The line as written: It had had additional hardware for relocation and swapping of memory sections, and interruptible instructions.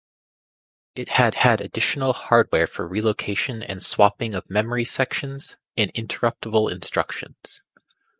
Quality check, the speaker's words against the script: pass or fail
pass